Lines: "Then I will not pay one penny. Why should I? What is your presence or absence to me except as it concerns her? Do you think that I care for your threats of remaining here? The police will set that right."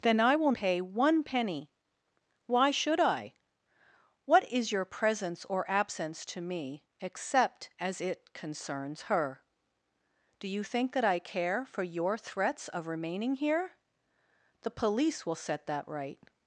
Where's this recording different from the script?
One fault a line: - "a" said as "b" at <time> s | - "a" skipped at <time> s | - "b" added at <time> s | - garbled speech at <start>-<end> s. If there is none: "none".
- "not" skipped at 0.5 s